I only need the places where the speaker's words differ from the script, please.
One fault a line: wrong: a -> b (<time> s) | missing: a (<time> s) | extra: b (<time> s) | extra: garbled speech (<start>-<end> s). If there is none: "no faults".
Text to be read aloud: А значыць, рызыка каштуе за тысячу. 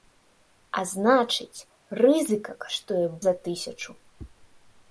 no faults